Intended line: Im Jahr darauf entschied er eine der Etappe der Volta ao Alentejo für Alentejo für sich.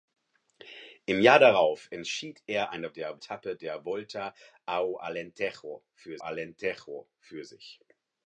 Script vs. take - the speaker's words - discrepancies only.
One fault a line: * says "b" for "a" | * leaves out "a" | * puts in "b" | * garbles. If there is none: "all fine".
all fine